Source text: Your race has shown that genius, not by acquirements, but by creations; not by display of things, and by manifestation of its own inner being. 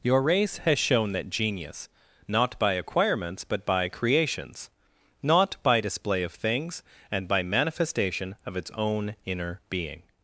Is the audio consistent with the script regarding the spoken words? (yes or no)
yes